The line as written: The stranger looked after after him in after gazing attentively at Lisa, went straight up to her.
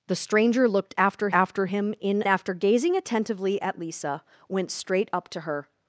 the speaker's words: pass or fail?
pass